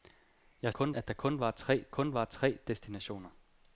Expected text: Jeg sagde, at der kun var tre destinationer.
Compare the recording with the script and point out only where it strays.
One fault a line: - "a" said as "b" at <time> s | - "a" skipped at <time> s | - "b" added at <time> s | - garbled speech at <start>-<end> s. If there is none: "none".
- "sagde" said as "kun" at 0.7 s
- "kun var tre" added at 1.9 s